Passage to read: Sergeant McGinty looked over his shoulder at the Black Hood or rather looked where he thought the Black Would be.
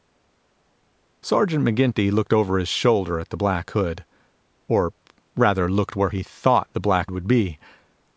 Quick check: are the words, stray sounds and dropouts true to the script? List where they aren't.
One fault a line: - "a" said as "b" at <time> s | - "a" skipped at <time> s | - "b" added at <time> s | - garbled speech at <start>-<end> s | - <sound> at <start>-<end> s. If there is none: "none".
none